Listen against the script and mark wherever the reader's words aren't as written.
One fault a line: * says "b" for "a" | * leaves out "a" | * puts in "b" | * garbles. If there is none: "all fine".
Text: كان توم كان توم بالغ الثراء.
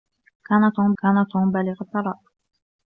all fine